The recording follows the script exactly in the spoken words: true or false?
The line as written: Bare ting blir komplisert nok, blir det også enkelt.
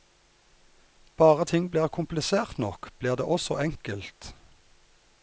true